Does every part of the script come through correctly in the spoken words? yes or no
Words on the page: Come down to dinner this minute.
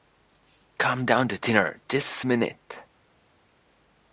yes